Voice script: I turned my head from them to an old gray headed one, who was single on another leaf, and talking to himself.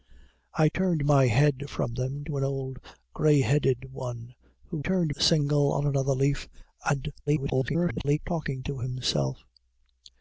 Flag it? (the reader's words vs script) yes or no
yes